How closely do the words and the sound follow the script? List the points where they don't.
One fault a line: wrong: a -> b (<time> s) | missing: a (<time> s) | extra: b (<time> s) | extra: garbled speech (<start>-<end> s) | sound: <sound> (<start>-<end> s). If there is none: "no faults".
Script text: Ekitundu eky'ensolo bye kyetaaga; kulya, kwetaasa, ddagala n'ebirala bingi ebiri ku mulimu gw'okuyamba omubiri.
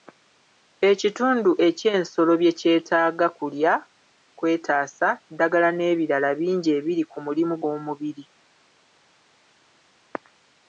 missing: gw'okuyamba (7.5 s)